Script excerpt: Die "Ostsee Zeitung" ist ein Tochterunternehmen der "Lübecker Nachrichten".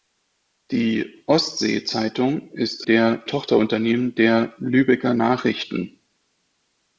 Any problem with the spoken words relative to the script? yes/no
yes